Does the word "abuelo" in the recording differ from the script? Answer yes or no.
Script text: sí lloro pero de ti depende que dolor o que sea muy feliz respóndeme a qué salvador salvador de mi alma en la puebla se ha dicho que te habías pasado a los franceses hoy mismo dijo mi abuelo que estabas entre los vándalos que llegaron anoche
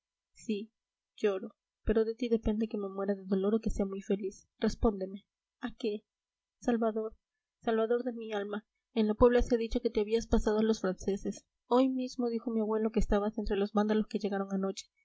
no